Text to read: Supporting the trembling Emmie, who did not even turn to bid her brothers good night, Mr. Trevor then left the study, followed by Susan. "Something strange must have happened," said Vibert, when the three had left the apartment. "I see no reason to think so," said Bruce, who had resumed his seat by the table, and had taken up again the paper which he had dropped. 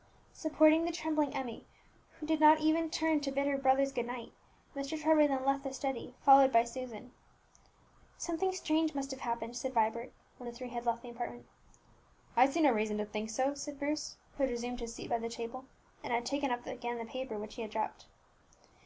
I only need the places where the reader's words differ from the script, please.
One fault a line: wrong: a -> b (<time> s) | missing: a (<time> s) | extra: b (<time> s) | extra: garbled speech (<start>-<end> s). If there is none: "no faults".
no faults